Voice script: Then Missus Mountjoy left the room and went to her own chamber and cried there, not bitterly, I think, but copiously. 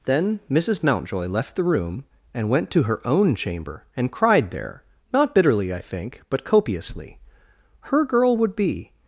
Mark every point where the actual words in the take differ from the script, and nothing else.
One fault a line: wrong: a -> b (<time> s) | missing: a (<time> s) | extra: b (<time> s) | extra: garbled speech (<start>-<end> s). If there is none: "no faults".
extra: Her girl would be (7.8 s)